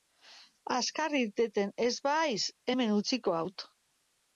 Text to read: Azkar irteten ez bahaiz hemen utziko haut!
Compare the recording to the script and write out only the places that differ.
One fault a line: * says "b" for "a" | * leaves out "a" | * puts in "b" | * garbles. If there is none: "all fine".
all fine